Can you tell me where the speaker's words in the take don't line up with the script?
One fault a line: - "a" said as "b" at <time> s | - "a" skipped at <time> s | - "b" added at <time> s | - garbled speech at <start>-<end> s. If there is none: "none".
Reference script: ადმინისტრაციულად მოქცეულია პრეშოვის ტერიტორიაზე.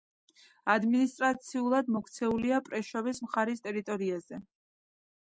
- "მხარის" added at 3.3 s